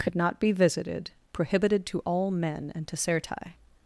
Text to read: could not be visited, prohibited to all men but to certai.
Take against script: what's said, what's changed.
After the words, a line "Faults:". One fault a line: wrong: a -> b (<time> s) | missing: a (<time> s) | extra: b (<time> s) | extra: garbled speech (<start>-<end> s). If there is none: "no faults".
could not be visited, prohibited to all men and to certai.
Faults:
wrong: but -> and (2.7 s)